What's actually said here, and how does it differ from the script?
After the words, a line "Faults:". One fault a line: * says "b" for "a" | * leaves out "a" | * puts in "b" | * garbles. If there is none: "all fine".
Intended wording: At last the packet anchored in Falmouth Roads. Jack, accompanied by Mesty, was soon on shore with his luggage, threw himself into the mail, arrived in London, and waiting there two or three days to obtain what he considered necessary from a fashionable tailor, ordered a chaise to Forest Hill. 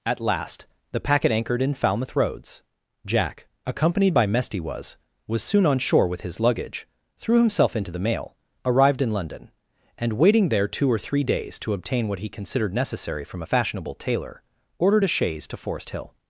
At last the packet anchored in Falmouth Roads. Jack, accompanied by Mesty, was was soon on shore with his luggage, threw himself into the mail, arrived in London, and waiting there two or three days to obtain what he considered necessary from a fashionable tailor, ordered a chaise to Forest Hill.
Faults:
* puts in "was"